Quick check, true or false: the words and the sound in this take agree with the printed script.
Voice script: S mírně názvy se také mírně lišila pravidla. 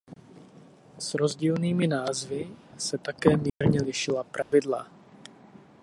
false